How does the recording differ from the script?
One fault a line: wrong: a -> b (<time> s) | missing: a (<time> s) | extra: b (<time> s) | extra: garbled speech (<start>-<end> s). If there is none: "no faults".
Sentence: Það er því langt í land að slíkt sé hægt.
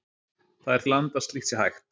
missing: því langt (0.8 s)